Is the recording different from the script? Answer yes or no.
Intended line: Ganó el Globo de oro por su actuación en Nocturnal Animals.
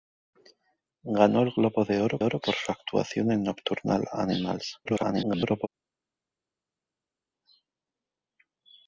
yes